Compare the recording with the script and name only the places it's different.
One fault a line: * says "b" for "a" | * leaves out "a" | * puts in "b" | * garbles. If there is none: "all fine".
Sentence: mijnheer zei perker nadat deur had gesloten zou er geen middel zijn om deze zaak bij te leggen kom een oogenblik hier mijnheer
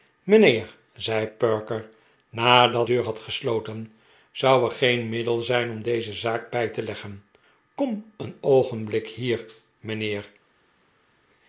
all fine